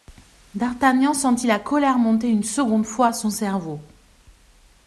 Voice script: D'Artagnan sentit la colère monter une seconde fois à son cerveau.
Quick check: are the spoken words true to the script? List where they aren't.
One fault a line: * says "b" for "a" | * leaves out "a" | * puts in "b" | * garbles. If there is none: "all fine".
all fine